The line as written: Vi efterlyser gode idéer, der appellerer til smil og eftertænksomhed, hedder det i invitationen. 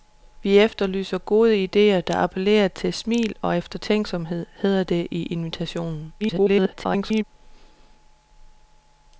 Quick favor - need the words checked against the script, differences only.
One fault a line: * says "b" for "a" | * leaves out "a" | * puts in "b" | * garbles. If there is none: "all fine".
* garbles